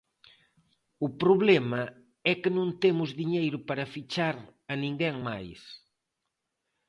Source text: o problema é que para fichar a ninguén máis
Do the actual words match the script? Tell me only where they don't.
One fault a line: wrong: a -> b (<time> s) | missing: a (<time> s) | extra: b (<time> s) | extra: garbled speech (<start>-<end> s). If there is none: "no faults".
extra: non temos diñeiro (2.6 s)